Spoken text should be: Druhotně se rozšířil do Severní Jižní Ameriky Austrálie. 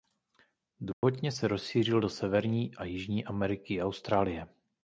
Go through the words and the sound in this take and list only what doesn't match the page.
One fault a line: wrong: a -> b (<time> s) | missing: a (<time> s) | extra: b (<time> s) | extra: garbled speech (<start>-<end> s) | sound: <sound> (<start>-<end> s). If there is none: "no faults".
sound: dropout (0.9-1.0 s)
extra: a (2.7 s)
extra: i (3.7 s)